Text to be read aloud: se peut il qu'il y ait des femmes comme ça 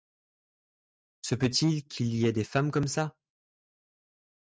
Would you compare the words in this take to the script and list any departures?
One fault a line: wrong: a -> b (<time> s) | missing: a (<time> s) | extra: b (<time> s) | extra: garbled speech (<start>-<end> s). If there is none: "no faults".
no faults